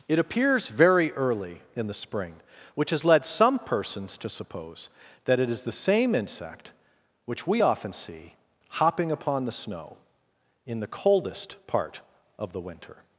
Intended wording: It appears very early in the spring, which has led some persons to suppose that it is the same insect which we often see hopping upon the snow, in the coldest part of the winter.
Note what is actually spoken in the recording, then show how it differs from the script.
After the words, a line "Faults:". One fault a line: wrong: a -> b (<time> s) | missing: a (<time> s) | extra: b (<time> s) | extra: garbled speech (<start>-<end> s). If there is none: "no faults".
It appears very early in the spring, which has led some persons to suppose that it is the same insect which we often see hopping upon the snow, in the coldest part of the winter.
Faults:
no faults